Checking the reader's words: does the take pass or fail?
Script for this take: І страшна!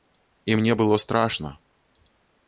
fail